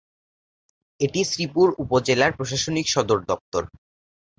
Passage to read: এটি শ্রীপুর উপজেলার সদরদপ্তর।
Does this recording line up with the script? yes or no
no